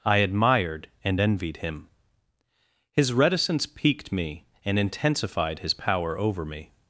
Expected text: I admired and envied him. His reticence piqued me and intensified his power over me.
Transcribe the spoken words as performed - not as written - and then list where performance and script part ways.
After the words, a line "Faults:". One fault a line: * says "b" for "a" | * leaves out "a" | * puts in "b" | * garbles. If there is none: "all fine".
I admired and envied him. His reticence piqued me and intensified his power over me.
Faults:
all fine